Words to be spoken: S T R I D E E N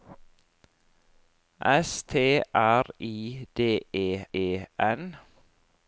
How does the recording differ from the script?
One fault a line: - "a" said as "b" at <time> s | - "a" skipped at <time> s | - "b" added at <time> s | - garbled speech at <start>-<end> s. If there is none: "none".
none